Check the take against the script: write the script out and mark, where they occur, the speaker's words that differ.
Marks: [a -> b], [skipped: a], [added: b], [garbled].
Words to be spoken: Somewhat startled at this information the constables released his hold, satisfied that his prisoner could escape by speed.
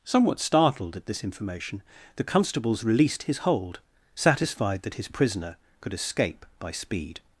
Somewhat startled at this information the constables released his hold, satisfied that his prisoner could escape by speed.